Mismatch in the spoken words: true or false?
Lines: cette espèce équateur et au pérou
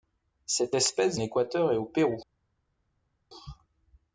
false